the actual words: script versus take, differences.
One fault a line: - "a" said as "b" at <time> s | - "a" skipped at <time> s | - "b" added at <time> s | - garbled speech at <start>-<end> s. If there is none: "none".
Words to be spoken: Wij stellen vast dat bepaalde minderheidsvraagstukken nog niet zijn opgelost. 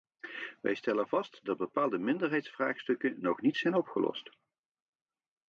none